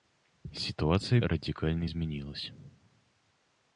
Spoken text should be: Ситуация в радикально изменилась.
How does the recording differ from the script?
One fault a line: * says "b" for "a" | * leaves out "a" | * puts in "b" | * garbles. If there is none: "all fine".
all fine